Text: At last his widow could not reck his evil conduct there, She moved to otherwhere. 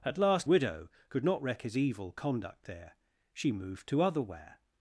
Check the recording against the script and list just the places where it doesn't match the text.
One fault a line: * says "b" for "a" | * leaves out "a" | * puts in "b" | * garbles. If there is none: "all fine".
* leaves out "his"